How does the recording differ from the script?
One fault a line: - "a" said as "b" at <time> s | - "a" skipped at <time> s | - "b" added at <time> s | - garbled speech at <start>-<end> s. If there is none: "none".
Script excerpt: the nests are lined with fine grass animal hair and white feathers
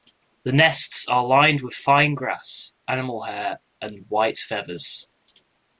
none